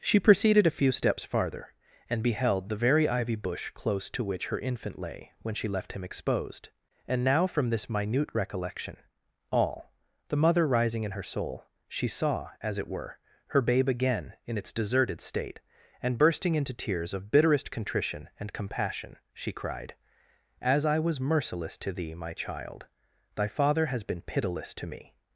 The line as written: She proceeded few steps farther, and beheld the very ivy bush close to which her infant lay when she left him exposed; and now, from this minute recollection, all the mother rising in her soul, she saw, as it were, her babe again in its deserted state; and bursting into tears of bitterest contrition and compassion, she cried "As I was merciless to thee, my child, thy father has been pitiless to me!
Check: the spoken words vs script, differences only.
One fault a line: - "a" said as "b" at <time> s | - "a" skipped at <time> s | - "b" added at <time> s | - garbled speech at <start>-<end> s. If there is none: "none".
- "a" added at 0.7 s